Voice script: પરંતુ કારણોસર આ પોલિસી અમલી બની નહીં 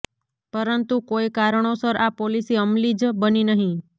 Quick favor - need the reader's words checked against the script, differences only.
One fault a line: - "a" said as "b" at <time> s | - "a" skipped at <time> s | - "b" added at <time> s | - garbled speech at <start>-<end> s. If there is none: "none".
- "કોઈ" added at 1.1 s
- "જ" added at 3.0 s